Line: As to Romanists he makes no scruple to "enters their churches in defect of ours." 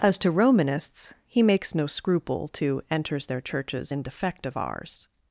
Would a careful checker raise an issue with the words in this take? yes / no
no